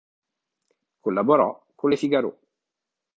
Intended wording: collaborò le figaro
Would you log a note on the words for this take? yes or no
yes